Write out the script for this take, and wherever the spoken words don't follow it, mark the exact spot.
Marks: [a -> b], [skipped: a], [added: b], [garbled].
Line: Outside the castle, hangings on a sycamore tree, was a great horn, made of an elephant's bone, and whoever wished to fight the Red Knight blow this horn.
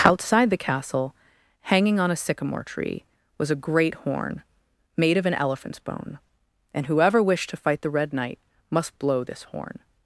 Outside the castle, [hangings -> hanging] on a sycamore tree, was a great horn, made of an elephant's bone, and whoever wished to fight the Red Knight [added: must] blow this horn.